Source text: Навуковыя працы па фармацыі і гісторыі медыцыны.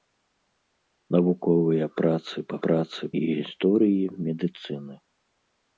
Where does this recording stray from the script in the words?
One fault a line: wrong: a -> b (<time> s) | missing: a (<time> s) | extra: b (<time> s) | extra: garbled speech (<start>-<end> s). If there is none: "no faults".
wrong: фармацыі -> працы (2.7 s)